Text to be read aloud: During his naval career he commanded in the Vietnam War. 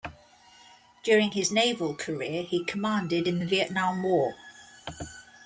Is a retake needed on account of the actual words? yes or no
no